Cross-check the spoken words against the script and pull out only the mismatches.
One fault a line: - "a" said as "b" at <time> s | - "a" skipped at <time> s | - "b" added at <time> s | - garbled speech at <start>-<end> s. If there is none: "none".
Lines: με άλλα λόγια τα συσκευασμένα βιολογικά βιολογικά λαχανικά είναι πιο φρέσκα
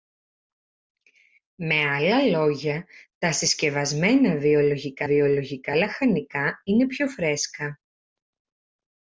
none